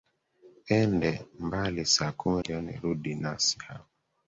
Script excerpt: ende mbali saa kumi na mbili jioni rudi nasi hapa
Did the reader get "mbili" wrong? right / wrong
wrong